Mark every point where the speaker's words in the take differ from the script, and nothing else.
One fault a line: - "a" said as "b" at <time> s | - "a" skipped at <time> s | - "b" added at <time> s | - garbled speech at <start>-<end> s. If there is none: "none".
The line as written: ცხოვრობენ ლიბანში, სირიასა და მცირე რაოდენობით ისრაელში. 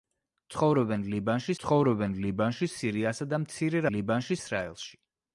- "ცხოვრობენ ლიბანში" added at 1.6 s
- "რაოდენობით" said as "ლიბანში" at 3.9 s